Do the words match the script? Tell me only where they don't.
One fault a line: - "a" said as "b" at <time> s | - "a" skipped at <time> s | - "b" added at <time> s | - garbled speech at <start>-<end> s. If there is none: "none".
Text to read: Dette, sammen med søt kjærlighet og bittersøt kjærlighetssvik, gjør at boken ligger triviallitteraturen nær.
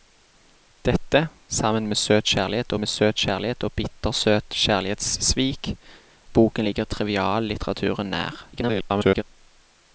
- "med søt kjærlighet" added at 2.8 s
- "gjør" skipped at 5.7 s
- garbled speech at 8.5-9.2 s